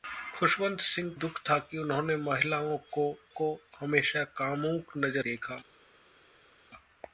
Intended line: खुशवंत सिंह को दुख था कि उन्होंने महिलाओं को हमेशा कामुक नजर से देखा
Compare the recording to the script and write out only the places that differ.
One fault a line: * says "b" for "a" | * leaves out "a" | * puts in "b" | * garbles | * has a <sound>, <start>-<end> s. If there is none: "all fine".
* leaves out "को"
* puts in "को"
* leaves out "से"